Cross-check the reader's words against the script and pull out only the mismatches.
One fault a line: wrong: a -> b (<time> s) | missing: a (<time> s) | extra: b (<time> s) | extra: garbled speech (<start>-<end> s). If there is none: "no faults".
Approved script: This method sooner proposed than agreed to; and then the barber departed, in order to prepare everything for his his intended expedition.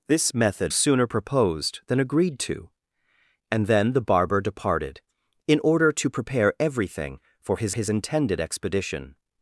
no faults